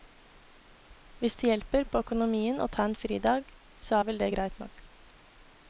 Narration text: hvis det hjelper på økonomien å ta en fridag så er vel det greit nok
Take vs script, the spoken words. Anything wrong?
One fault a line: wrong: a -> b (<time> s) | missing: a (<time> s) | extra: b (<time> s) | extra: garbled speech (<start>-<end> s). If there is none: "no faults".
no faults